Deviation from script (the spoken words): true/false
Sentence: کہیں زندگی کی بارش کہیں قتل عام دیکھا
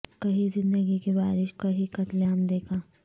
false